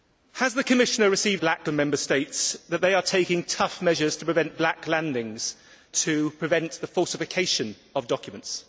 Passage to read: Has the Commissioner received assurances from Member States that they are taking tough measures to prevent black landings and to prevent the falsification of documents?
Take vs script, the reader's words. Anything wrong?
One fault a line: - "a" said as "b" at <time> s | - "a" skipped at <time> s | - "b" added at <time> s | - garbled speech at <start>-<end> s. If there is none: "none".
- "assurances" said as "black" at 1.4 s
- "and" skipped at 5.5 s